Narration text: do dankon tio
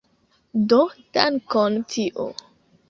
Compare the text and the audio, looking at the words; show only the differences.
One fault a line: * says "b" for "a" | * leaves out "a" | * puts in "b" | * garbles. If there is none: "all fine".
all fine